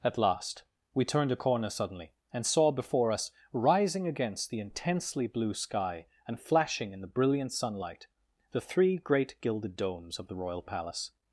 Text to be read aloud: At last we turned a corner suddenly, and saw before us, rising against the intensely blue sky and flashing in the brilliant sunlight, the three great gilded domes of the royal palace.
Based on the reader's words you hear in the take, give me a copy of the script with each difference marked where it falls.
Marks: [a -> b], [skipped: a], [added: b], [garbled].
At last we turned a corner suddenly, and saw before us, rising against the intensely blue sky and flashing in the brilliant sunlight, the three great gilded domes of the royal palace.